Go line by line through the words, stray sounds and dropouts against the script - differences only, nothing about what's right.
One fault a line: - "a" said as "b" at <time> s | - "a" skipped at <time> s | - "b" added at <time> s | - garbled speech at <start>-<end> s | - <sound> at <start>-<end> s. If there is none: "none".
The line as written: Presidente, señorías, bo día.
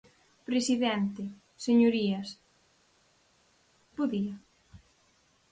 none